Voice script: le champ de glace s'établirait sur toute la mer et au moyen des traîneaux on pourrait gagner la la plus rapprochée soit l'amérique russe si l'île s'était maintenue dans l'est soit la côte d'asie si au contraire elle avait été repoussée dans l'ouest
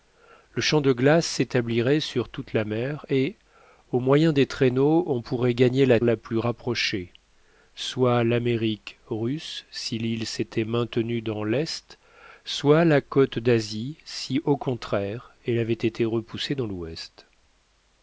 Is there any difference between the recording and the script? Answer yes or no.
no